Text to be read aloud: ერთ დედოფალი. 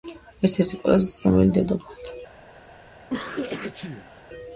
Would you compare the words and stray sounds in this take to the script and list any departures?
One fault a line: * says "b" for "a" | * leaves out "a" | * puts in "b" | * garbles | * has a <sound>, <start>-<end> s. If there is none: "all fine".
* puts in "ერთი ყველაზე ცნობილი"
* has a sneeze, 3.0-4.2 s